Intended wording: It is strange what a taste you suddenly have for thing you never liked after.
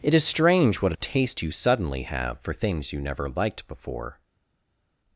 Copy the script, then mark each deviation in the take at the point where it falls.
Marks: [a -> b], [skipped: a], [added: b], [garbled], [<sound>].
It is strange what a taste you suddenly have for [thing -> things] you never liked [after. -> before]